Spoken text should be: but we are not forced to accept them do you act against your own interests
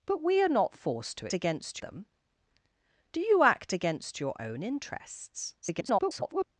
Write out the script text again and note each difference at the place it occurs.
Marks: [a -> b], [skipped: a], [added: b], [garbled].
but we are not forced to [accept -> against] them do you act against your own interests [garbled]